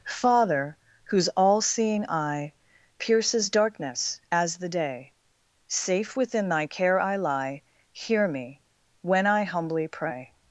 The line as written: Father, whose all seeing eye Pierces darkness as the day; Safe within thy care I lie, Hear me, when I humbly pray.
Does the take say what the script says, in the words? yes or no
yes